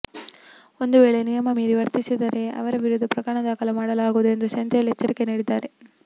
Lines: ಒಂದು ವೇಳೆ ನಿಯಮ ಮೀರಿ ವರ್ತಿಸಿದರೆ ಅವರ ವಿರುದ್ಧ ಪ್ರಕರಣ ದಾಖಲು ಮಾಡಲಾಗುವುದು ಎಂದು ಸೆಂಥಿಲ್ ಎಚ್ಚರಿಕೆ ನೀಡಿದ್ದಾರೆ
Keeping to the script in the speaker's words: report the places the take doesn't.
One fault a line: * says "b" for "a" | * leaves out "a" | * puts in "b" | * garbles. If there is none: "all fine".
all fine